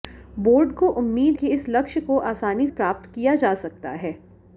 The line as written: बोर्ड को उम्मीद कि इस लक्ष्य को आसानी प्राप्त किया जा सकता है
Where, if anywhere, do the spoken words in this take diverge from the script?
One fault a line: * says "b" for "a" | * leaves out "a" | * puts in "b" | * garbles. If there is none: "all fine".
all fine